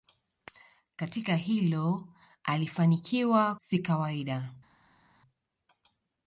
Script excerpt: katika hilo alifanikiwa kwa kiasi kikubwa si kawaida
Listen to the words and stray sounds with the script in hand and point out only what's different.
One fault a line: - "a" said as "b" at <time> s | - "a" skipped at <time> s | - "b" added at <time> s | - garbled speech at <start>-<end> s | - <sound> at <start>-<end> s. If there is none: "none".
- "kwa kiasi kikubwa" skipped at 3.5 s